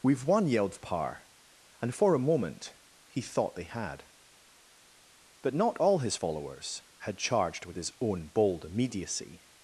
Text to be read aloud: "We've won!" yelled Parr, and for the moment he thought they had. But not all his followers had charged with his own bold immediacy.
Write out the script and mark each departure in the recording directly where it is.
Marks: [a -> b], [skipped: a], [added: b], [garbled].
"We've won!" yelled Parr, and for [the -> a] moment he thought they had. But not all his followers had charged with his own bold immediacy.